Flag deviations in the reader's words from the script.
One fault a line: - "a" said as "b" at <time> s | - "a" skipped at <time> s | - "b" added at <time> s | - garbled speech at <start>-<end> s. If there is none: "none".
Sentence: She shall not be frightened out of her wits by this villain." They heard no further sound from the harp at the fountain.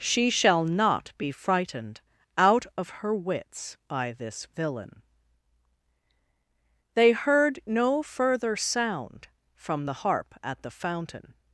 none